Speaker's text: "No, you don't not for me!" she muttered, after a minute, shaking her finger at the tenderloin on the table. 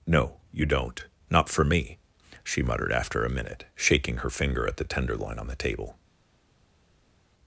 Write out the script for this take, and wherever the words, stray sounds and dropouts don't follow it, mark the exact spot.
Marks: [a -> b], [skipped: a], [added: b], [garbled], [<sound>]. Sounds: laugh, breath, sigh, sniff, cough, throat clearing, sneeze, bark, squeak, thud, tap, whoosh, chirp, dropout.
"No, you don't not for me!" she muttered, after a minute, shaking her finger at the tenderloin on the table.